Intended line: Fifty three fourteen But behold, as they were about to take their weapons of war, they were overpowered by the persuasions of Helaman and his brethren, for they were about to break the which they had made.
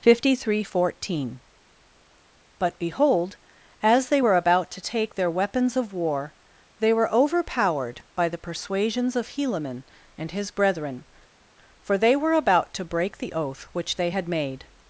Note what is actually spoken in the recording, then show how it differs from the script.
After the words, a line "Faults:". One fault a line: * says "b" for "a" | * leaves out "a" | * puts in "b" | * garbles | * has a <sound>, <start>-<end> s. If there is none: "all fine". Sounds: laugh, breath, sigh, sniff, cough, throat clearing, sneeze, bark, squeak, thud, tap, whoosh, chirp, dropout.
Fifty three fourteen But behold, as they were about to take their weapons of war, they were overpowered by the persuasions of Helaman and his brethren, for they were about to break the oath which they had made.
Faults:
* puts in "oath"